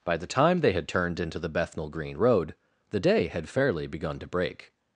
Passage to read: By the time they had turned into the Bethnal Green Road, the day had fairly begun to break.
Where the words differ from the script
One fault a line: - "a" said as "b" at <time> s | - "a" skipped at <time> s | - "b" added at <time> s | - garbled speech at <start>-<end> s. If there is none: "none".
none